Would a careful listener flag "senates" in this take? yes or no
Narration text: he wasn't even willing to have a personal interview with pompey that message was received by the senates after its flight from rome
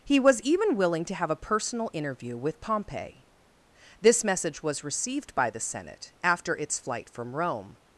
yes